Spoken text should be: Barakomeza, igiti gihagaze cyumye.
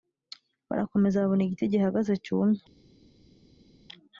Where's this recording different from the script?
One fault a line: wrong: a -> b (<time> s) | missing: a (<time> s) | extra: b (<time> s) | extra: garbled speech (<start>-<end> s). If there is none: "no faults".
extra: babona (1.2 s)